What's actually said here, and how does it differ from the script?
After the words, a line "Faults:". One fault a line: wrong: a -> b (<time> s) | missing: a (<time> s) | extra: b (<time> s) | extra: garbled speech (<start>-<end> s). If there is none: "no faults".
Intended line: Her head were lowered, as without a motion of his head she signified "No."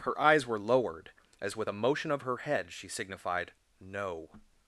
Her eyes were lowered, as with a motion of her head she signified "No."
Faults:
wrong: head -> eyes (0.2 s)
wrong: without -> with (1.6 s)
wrong: his -> her (2.2 s)